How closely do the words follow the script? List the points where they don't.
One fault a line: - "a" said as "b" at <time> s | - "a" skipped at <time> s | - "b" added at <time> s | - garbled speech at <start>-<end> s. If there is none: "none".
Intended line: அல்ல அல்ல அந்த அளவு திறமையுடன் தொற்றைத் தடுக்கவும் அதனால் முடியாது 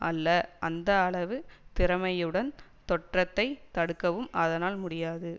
- "அல்ல" skipped at 0.3 s